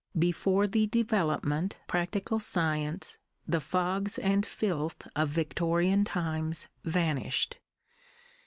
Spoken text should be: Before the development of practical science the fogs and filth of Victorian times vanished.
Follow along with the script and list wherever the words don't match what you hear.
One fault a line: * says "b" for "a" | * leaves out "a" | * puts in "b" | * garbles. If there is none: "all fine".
* leaves out "of"